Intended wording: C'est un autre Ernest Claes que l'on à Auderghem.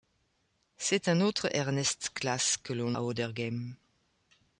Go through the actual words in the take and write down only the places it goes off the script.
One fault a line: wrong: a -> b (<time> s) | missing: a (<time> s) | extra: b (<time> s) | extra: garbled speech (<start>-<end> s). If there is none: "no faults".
no faults